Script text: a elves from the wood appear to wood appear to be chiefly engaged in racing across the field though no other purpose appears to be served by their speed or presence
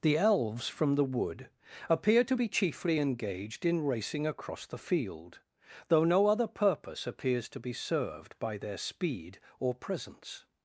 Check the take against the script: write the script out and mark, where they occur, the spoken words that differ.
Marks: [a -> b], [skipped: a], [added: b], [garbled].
[a -> the] elves from the wood appear to [skipped: wood appear to] be chiefly engaged in racing across the field though no other purpose appears to be served by their speed or presence